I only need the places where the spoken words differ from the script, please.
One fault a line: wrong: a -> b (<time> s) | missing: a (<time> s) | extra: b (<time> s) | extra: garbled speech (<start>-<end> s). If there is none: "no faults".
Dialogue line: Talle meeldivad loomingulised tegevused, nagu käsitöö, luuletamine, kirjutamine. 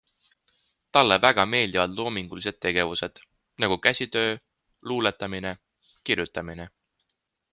extra: väga (1.2 s)